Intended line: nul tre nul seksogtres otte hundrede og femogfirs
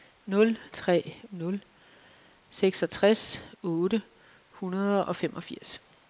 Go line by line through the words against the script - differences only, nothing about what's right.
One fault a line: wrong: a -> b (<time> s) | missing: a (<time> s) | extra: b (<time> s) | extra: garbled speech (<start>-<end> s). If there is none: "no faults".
no faults